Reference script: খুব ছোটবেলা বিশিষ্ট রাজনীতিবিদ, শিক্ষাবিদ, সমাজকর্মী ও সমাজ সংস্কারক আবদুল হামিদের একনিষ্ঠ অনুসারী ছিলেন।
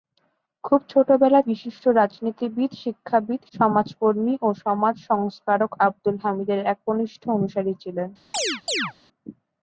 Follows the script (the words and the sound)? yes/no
no